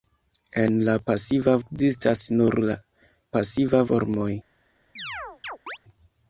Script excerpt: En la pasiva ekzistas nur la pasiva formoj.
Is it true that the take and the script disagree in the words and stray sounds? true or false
true